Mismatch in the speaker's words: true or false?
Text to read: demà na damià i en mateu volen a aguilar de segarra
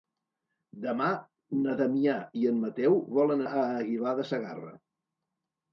false